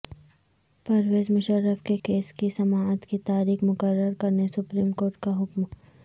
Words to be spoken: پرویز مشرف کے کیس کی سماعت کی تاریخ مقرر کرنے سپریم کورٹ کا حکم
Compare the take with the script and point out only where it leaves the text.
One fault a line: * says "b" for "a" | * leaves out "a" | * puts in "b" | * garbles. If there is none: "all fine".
all fine